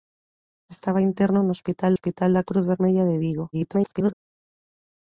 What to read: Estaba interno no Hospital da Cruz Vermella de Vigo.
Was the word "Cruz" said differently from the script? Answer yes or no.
no